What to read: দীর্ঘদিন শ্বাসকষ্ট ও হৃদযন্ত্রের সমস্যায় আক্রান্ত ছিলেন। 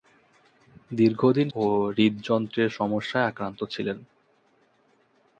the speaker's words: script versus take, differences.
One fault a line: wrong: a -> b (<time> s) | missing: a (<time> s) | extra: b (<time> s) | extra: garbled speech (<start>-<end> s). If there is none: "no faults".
missing: শ্বাসকষ্ট (1.5 s)